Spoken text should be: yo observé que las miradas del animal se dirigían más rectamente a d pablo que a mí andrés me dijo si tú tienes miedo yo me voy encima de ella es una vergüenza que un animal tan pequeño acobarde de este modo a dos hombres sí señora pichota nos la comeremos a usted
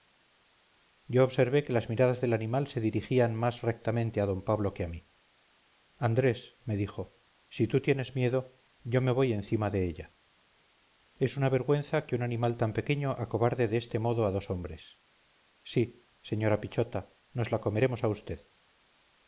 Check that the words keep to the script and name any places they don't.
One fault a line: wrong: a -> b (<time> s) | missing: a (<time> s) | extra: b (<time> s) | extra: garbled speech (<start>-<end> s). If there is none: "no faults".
no faults